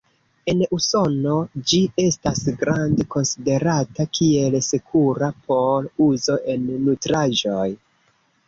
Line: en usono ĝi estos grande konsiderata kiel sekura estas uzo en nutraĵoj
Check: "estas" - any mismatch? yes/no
yes